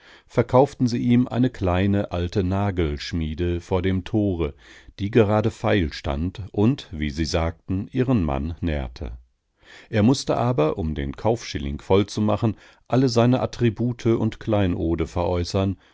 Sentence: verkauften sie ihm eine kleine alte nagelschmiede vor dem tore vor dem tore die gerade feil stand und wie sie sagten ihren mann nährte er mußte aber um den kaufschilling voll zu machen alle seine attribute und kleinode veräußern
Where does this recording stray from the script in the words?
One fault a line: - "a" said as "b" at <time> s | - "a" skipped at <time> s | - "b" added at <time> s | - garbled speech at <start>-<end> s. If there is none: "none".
- "vor dem tore" skipped at 4.5 s